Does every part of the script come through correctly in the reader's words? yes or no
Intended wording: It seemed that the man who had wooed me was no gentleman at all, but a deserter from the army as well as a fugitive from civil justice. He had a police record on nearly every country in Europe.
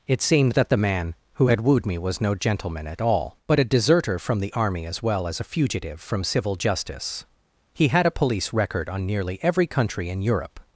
yes